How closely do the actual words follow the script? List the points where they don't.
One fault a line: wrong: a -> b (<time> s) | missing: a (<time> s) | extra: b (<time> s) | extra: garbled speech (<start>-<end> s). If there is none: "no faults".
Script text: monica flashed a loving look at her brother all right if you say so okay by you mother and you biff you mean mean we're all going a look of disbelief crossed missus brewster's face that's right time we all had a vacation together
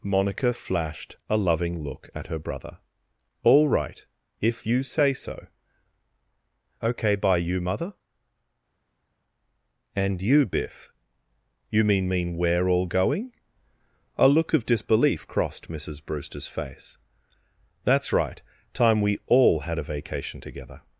no faults